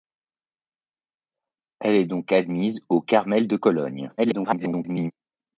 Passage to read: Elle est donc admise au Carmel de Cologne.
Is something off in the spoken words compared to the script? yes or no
yes